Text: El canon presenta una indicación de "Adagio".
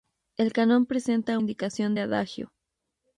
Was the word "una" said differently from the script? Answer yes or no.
yes